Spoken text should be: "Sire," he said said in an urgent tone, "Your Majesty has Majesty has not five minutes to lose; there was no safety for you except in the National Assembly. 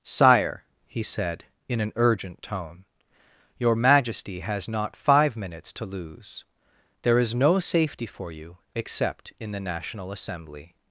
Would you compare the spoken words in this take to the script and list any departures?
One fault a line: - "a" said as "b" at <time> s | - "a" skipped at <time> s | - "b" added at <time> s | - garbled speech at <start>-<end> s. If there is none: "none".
- "said" skipped at 1.4 s
- "Majesty has" skipped at 4.7 s
- "was" said as "is" at 7.2 s